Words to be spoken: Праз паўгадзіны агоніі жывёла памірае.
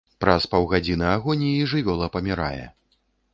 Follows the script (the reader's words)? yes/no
yes